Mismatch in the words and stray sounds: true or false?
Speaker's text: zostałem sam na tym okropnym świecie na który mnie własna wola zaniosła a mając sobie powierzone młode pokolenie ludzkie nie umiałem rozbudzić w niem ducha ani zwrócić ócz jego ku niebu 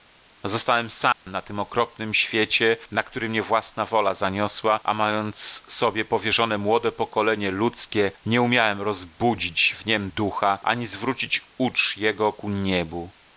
true